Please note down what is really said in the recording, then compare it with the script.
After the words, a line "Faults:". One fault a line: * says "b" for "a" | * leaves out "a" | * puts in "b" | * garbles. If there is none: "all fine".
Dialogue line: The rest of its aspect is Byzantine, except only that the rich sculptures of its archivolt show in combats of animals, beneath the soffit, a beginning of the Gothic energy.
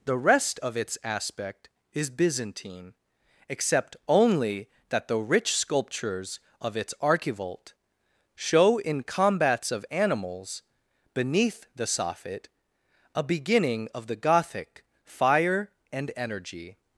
The rest of its aspect is Byzantine, except only that the rich sculptures of its archivolt show in combats of animals, beneath the soffit, a beginning of the Gothic fire and energy.
Faults:
* puts in "fire and"